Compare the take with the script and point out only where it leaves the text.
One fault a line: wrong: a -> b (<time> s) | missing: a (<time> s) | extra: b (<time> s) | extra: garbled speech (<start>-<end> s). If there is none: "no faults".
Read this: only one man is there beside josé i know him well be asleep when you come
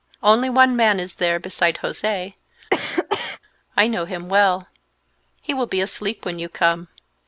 extra: he will (5.4 s)